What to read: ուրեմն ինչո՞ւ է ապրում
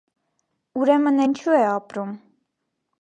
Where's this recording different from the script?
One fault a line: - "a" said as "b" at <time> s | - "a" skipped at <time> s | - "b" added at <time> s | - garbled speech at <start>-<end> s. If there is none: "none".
none